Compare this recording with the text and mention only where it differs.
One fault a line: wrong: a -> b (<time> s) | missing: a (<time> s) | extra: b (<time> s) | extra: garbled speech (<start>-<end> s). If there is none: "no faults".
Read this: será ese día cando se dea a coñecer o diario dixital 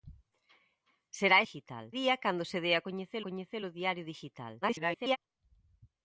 wrong: ese -> dixital (1.4 s)
extra: coñecer (3.2 s)
extra: garbled speech (4.6-5.2 s)